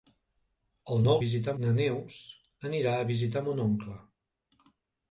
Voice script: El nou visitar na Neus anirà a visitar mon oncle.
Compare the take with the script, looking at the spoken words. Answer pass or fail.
pass